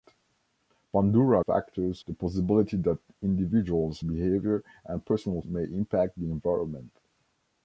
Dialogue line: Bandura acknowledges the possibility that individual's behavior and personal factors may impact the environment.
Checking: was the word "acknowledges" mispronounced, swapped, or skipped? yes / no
yes